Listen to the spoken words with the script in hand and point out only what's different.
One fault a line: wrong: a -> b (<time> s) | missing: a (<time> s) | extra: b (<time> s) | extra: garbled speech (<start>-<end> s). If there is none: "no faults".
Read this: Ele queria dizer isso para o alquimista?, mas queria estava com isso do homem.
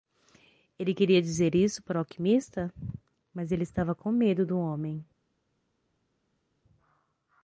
wrong: queria -> ele (3.5 s)
wrong: isso -> medo (4.1 s)